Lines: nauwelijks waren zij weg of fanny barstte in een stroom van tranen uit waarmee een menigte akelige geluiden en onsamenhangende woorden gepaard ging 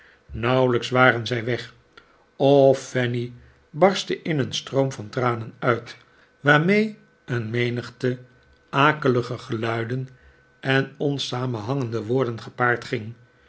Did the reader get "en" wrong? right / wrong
right